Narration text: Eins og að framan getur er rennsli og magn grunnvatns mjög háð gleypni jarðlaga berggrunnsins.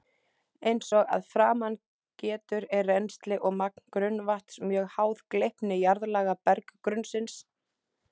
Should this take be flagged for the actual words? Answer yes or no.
no